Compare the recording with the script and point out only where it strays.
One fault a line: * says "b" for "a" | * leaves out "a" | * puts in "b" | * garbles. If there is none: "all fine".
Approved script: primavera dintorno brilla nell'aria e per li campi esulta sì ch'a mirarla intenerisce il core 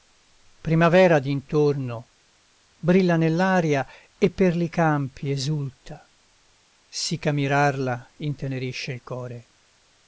all fine